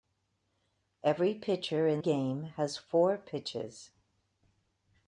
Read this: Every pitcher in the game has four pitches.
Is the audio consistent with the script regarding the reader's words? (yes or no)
no